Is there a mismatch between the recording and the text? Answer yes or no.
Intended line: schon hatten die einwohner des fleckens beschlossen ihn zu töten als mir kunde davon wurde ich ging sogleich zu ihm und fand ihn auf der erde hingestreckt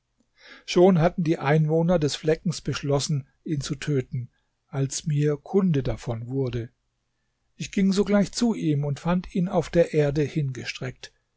no